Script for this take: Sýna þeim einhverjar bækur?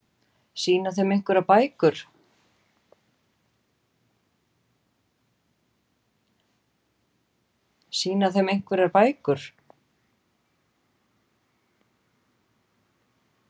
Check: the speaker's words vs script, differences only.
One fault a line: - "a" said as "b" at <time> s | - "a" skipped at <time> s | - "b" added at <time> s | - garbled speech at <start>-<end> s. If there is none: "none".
none